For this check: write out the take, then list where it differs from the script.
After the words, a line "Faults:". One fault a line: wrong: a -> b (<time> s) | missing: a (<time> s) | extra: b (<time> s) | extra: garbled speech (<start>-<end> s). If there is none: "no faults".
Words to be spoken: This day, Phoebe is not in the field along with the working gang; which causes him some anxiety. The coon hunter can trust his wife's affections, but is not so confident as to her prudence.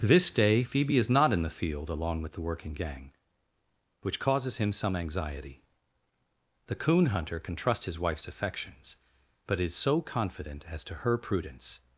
This day, Phoebe is not in the field along with the working gang; which causes him some anxiety. The coon hunter can trust his wife's affections, but is so confident as to her prudence.
Faults:
missing: not (9.7 s)